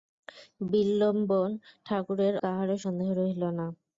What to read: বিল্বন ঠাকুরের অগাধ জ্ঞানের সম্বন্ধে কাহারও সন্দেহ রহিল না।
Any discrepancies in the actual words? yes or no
yes